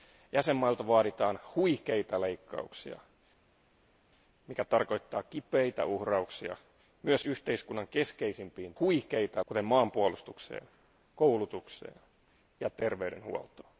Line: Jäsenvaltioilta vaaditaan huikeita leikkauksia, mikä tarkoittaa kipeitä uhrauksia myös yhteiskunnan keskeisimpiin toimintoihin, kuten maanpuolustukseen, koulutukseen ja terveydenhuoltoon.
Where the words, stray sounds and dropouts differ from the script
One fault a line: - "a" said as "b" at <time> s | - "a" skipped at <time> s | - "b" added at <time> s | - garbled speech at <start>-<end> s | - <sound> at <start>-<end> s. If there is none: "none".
- "toimintoihin" said as "huikeita" at 8.8 s